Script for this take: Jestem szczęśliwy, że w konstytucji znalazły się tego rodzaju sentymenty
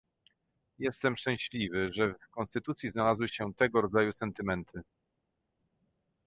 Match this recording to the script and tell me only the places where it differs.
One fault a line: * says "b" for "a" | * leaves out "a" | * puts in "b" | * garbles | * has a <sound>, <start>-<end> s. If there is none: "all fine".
all fine